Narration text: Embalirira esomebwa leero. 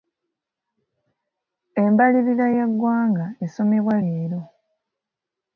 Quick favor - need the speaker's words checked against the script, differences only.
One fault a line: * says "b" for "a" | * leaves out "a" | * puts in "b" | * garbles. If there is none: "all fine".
* puts in "y'eggwanga"